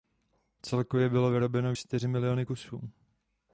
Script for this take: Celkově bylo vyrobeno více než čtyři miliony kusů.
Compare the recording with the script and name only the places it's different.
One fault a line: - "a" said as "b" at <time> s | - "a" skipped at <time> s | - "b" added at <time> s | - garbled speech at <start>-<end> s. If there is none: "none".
- "více než" skipped at 1.7 s